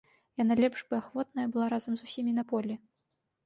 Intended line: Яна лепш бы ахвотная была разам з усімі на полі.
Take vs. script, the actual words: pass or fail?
pass